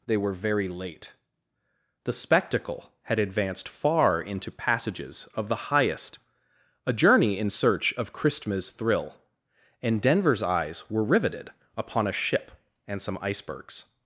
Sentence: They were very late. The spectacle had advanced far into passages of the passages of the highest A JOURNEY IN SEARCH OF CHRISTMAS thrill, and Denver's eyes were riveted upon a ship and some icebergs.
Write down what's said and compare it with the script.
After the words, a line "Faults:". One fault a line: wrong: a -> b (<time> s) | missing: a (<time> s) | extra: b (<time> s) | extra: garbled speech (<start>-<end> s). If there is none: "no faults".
They were very late. The spectacle had advanced far into passages of the highest A JOURNEY IN SEARCH OF CHRISTMAS thrill, and Denver's eyes were riveted upon a ship and some icebergs.
Faults:
missing: passages of the (5.7 s)